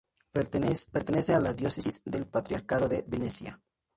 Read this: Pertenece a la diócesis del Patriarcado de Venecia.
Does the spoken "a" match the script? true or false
true